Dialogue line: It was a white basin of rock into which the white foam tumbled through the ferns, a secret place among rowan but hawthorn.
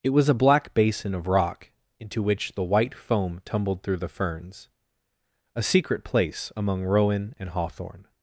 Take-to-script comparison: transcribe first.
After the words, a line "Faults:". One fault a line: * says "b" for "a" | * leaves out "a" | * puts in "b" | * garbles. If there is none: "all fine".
It was a black basin of rock into which the white foam tumbled through the ferns, a secret place among rowan and hawthorn.
Faults:
* says "black" for "white"
* says "and" for "but"